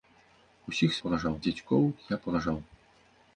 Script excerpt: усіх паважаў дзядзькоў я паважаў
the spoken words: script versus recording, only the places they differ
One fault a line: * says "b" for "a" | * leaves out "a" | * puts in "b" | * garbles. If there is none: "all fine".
all fine